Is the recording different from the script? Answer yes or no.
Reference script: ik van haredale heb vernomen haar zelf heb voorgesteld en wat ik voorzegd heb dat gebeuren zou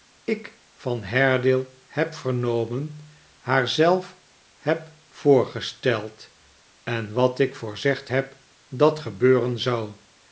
no